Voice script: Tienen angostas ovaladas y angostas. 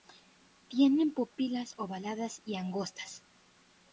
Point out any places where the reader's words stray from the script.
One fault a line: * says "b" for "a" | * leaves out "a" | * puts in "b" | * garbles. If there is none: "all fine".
* says "pupilas" for "angostas"